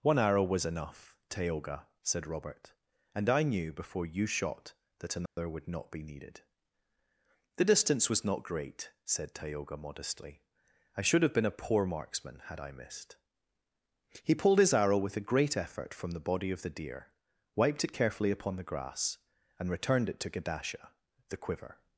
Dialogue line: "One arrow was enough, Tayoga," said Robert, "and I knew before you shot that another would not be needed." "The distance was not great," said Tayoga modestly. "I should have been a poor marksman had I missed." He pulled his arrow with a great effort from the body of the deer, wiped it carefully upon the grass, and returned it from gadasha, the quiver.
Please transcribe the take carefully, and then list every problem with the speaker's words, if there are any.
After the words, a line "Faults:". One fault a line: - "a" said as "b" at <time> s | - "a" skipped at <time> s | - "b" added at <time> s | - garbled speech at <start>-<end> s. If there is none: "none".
"One arrow was enough, Tayoga," said Robert, "and I knew before you shot that another would not be needed." "The distance was not great," said Tayoga modestly. "I should have been a poor marksman had I missed." He pulled his arrow with a great effort from the body of the deer, wiped it carefully upon the grass, and returned it to gadasha, the quiver.
Faults:
- "from" said as "to" at 20.2 s